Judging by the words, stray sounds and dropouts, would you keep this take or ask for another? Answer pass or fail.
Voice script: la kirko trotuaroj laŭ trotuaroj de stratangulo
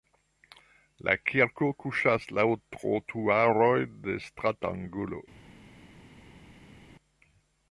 fail